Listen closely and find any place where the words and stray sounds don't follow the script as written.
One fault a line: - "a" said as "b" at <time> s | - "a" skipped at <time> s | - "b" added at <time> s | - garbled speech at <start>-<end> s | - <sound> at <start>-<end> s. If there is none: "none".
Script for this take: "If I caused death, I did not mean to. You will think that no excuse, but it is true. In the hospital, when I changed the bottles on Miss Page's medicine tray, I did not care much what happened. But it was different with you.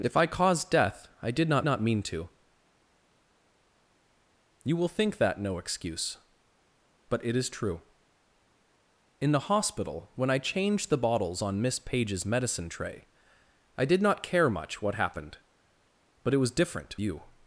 - "not" added at 1.6 s
- "with" skipped at 17.0 s